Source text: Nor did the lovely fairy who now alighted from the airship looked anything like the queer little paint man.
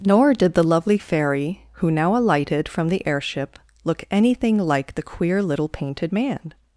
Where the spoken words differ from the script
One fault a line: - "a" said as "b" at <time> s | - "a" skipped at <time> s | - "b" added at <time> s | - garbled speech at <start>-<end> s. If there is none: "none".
- "looked" said as "look" at 3.8 s
- "paint" said as "painted" at 5.7 s